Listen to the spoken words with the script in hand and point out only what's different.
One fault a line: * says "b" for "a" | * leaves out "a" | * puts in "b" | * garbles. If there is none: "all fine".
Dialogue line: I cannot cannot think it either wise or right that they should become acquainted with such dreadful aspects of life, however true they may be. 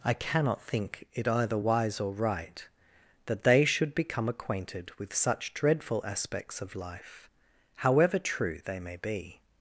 * leaves out "cannot"